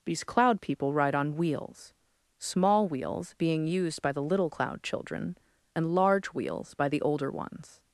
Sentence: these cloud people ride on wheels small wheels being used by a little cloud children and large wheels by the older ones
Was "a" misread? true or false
true